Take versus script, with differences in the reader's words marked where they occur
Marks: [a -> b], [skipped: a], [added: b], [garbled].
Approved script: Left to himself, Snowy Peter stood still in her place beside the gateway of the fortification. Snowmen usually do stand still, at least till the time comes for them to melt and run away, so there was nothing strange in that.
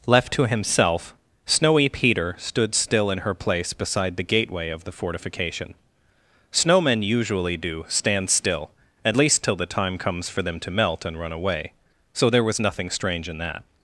Left to himself, Snowy Peter stood still in her place beside the gateway of the fortification. Snowmen usually do stand still, at least till the time comes for them to melt and run away, so there was nothing strange in that.